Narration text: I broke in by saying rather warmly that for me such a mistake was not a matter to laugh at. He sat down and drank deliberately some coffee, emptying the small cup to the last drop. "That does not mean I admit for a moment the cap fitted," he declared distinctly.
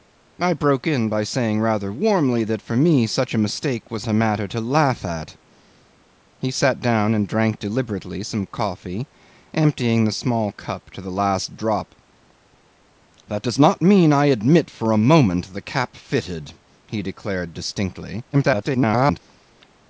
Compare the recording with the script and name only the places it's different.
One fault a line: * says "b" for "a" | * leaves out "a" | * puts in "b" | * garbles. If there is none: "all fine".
* leaves out "not"
* garbles